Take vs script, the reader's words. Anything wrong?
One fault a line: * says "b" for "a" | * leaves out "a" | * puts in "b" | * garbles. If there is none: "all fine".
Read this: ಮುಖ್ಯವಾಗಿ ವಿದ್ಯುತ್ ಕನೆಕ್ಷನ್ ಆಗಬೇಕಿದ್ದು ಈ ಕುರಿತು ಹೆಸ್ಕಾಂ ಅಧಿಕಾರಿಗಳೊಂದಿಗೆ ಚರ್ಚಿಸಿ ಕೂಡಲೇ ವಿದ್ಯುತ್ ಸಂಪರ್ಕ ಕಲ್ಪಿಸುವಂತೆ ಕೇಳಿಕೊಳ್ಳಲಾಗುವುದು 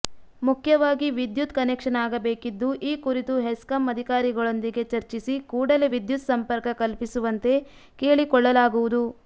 all fine